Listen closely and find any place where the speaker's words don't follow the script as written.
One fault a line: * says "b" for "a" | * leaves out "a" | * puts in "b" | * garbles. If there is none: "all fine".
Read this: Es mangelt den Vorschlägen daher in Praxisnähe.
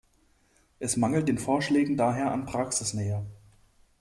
* says "an" for "in"